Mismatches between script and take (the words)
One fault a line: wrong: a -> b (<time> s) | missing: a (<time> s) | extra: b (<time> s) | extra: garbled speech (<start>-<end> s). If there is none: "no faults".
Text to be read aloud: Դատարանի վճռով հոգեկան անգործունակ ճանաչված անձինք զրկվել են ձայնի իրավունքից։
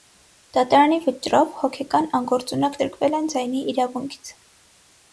missing: ճանաչված անձինք (2.8 s)